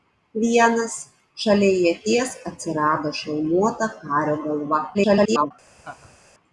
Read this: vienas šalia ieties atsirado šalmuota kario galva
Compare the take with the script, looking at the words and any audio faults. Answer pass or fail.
fail